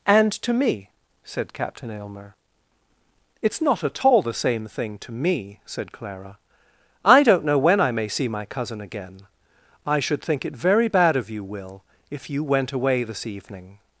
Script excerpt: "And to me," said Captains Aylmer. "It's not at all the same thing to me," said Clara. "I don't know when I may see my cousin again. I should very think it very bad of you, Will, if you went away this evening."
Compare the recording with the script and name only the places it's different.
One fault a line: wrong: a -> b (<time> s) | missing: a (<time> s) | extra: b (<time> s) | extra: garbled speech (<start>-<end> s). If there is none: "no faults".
wrong: Captains -> Captain (1.5 s)
missing: very (10.2 s)